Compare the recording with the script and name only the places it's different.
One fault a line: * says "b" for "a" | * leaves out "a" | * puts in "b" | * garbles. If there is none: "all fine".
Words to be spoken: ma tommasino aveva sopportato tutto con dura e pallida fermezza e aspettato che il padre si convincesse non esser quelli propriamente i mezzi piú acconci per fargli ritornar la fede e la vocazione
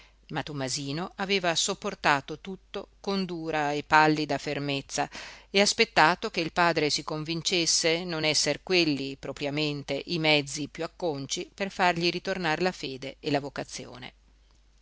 all fine